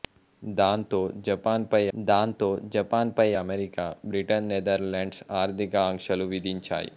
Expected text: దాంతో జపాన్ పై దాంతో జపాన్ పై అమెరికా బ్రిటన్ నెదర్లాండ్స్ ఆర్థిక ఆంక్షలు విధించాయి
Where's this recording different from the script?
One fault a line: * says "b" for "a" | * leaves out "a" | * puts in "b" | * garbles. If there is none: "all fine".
all fine